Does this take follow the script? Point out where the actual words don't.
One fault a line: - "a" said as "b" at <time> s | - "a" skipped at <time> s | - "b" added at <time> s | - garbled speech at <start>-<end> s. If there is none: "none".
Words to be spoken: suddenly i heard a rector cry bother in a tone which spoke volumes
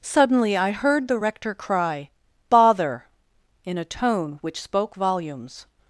- "a" said as "the" at 1.1 s